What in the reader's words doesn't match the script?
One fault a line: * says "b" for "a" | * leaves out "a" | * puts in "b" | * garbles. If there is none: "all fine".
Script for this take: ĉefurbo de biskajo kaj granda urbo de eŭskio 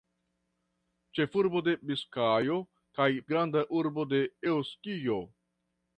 all fine